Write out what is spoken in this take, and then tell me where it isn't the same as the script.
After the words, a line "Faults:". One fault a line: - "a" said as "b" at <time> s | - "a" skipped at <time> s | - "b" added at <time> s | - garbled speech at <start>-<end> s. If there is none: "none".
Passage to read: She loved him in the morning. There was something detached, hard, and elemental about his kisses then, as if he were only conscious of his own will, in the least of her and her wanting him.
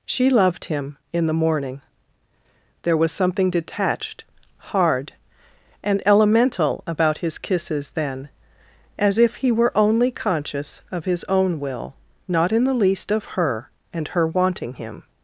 She loved him in the morning. There was something detached, hard, and elemental about his kisses then, as if he were only conscious of his own will, not in the least of her and her wanting him.
Faults:
- "not" added at 12.3 s